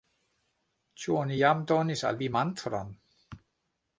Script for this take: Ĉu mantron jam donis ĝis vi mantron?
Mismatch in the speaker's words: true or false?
true